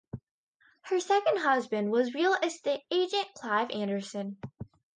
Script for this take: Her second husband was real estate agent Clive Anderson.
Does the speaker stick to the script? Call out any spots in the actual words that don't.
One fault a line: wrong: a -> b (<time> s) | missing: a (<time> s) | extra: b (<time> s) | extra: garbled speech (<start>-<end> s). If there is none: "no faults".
no faults